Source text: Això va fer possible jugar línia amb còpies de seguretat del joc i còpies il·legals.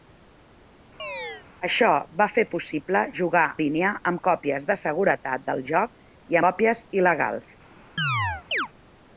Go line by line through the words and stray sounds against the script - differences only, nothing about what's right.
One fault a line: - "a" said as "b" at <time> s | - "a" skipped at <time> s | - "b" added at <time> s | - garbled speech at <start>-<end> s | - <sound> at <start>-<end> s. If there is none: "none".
- chirp at 1.0-1.5 s
- chirp at 8.0-8.7 s